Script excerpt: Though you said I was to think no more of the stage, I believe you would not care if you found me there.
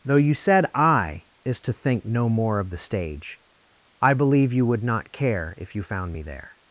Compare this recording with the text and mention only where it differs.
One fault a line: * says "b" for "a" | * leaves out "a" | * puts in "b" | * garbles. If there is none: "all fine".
* says "is" for "was"